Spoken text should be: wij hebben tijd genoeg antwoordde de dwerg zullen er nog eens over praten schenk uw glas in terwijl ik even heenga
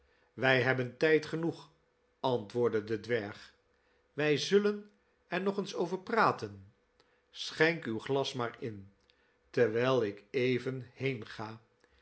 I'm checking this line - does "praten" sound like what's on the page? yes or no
yes